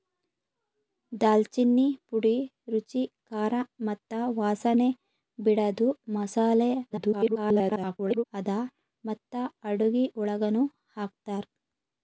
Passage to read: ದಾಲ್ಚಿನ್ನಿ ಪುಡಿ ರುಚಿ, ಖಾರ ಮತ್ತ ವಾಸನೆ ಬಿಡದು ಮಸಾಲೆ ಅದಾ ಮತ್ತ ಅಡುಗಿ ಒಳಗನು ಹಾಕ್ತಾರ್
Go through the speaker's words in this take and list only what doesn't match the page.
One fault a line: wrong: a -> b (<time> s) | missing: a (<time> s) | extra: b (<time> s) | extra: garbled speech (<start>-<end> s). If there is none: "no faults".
extra: garbled speech (6.9-8.3 s)